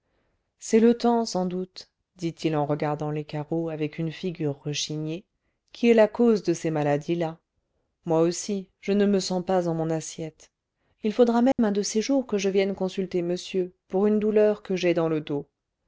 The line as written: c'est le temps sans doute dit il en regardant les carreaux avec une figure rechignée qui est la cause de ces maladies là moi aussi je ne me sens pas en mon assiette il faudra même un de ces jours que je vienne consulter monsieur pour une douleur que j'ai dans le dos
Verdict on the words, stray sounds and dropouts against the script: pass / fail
fail